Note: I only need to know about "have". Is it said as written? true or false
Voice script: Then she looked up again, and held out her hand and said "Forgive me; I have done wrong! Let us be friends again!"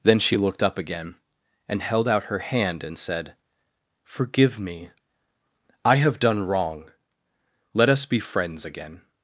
true